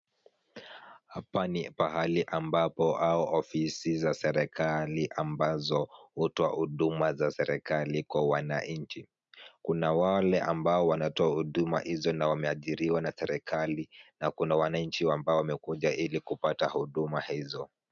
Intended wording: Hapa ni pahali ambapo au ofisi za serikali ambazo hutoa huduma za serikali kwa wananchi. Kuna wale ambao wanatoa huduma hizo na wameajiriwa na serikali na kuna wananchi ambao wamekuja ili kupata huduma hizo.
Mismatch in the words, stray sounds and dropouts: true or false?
false